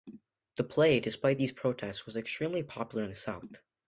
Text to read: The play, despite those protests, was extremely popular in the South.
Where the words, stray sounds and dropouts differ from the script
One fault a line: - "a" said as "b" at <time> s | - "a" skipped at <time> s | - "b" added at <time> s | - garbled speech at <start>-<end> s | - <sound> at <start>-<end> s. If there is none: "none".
- "those" said as "these" at 1.4 s